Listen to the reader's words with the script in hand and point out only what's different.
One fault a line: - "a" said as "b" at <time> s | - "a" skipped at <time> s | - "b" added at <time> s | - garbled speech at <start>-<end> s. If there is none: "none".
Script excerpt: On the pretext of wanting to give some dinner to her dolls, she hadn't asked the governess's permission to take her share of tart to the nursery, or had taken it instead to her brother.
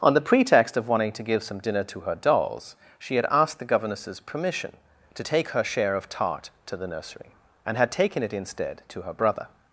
- "hadn't" said as "had" at 3.1 s
- "or" said as "and" at 7.6 s